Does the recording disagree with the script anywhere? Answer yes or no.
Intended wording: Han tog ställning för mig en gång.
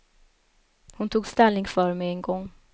yes